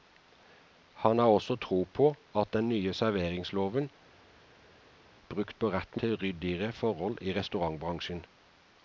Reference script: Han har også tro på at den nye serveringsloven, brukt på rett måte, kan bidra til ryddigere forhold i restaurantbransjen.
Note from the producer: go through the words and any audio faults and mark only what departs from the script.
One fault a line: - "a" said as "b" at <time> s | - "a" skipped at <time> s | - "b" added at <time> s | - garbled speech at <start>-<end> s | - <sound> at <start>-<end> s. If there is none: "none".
- "måte kan bidra" skipped at 6.0 s